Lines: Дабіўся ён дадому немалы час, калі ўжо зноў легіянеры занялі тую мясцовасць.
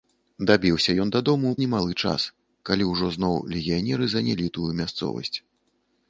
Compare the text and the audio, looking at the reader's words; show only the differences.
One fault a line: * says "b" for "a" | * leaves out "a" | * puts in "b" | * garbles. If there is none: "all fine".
all fine